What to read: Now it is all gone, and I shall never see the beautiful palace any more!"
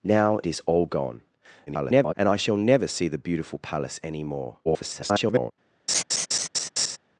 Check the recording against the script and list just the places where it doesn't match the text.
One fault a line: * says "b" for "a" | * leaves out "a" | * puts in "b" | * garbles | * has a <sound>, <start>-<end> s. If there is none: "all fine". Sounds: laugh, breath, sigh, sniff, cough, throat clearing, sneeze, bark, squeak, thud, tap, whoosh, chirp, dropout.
* leaves out "it"
* garbles
* garbles
* has a laugh, 5.9-7.0 s